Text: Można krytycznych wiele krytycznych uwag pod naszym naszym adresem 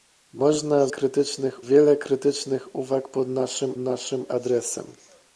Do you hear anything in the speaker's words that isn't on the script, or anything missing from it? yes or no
no